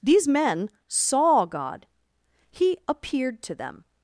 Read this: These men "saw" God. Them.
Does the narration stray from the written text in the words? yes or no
yes